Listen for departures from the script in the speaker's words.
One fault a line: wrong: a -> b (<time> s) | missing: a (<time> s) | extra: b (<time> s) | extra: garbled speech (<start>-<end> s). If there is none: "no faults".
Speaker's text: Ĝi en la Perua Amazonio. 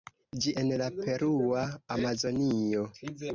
no faults